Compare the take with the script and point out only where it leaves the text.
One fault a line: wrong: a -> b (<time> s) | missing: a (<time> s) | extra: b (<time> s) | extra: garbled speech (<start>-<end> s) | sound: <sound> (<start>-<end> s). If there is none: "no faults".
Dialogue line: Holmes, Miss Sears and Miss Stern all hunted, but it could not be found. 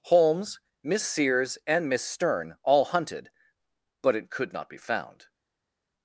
no faults